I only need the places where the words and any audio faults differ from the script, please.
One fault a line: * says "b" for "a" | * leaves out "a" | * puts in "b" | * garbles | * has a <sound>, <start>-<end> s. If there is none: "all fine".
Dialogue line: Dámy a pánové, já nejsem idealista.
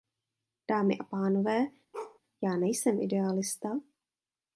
* has a bark, 1.9-2.2 s